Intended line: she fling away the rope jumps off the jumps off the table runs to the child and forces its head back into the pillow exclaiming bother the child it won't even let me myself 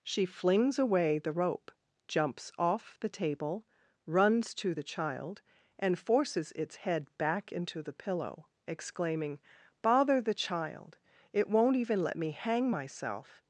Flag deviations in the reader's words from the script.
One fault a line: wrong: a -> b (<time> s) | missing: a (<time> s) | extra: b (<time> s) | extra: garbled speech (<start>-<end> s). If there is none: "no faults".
wrong: fling -> flings (0.2 s)
missing: jumps off the (3.1 s)
extra: hang (12.3 s)